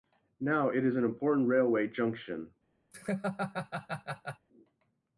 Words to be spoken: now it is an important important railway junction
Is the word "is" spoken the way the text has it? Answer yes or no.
yes